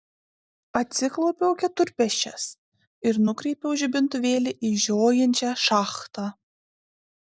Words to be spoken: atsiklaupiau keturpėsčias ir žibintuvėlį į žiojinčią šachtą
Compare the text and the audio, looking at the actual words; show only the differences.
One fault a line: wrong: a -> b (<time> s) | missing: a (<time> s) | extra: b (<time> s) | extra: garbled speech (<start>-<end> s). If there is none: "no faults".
extra: nukreipiau (3.3 s)